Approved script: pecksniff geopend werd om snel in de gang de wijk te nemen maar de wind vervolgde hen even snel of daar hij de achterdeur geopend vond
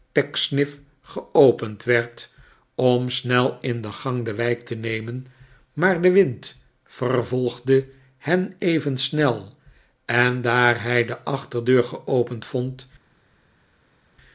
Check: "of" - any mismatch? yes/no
yes